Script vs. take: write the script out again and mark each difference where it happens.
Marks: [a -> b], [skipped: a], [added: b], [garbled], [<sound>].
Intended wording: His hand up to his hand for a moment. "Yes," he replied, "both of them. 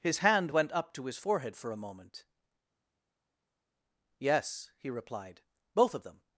His hand [added: went] up to his [hand -> forehead] for a moment. "Yes," he replied, "both of them.